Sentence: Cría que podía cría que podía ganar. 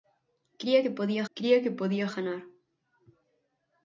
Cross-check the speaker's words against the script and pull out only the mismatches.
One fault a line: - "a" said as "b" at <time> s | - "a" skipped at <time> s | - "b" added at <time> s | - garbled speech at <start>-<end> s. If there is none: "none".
none